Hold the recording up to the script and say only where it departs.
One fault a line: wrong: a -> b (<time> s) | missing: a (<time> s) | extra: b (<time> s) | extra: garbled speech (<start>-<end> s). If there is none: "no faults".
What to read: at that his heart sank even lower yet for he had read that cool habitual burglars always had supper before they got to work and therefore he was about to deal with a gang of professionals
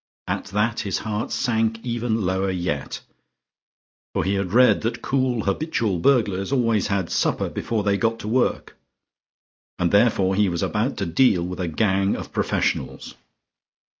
no faults